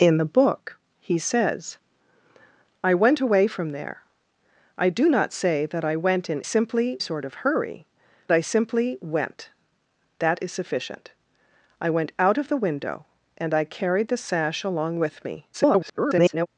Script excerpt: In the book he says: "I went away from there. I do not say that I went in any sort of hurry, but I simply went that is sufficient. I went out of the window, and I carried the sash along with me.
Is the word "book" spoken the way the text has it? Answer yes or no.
yes